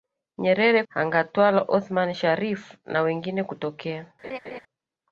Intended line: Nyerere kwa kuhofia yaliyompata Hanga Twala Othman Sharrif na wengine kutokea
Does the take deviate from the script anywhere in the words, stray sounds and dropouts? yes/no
yes